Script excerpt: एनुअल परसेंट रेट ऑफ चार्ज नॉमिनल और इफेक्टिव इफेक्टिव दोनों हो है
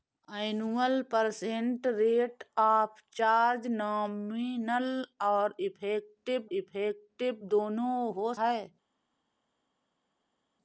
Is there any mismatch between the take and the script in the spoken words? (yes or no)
no